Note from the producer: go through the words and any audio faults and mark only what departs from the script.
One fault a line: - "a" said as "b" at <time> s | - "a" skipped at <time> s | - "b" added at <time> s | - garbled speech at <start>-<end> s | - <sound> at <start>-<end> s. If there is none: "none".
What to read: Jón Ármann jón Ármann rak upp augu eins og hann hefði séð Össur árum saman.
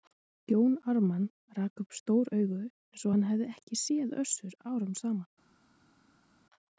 - "jón Ármann" skipped at 1.3 s
- "stór" added at 2.0 s
- "ekki" added at 3.6 s